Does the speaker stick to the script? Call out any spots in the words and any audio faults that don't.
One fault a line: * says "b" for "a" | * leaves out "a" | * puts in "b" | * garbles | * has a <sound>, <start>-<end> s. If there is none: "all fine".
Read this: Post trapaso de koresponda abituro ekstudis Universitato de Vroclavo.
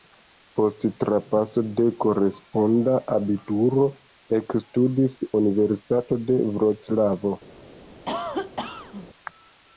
* has a cough, 8.0-9.1 s